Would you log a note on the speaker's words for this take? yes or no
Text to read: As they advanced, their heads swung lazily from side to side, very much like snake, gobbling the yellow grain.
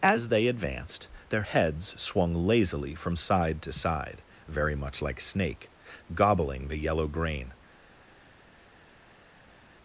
no